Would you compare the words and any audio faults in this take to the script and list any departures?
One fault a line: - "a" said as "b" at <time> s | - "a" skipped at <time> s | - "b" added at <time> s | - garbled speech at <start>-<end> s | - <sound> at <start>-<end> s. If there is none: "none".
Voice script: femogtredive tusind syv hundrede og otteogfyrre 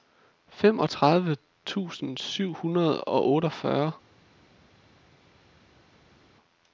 none